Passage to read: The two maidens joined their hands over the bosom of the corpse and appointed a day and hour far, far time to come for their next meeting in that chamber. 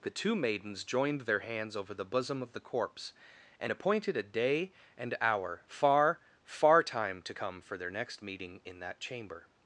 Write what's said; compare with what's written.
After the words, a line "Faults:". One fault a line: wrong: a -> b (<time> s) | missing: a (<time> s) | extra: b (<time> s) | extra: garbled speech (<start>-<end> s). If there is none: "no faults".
The two maidens joined their hands over the bosom of the corpse and appointed a day and hour far, far time to come for their next meeting in that chamber.
Faults:
no faults